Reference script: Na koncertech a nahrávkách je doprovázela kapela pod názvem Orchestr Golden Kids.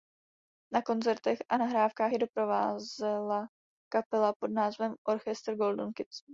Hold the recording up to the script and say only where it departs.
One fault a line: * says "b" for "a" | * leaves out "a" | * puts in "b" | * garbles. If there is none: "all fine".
all fine